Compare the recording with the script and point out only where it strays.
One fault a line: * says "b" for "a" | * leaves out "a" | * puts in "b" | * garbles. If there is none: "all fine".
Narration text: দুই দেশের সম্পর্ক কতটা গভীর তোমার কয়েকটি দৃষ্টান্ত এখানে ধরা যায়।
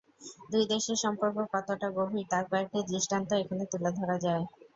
* says "তার" for "তোমার"
* puts in "তুলে"